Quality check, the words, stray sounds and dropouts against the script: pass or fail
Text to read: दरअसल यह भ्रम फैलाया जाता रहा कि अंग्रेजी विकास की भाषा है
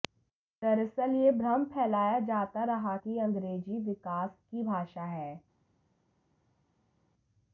pass